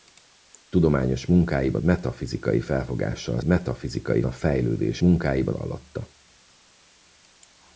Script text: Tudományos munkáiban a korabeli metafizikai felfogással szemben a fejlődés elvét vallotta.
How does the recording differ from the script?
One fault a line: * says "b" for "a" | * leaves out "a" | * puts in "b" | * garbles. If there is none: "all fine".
* leaves out "a korabeli"
* says "metafizikai" for "szemben"
* says "munkáiban" for "elvét"